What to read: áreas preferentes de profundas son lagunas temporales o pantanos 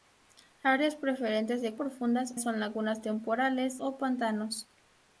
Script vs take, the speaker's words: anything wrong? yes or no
no